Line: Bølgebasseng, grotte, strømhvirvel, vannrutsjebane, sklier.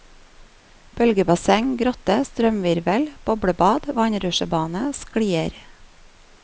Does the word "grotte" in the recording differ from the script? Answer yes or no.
no